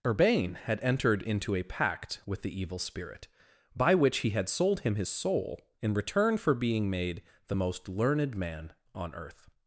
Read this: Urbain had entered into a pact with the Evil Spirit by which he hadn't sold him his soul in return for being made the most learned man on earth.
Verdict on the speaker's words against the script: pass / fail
fail